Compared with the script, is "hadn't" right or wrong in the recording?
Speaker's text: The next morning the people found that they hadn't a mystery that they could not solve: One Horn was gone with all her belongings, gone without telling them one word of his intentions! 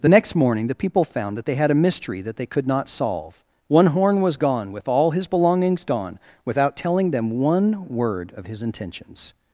wrong